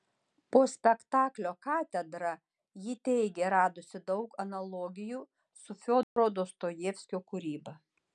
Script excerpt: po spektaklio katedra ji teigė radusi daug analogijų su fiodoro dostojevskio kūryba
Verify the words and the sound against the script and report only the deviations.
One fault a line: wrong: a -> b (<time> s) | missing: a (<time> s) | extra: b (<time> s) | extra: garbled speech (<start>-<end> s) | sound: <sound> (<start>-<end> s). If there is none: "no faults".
sound: dropout (6.0-6.2 s)